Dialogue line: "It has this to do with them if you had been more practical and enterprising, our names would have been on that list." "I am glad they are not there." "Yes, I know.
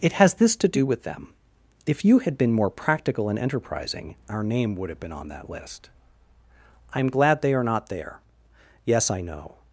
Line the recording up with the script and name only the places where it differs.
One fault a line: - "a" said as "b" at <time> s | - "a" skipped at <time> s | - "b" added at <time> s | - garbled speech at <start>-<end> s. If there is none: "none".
- "names" said as "name" at 4.4 s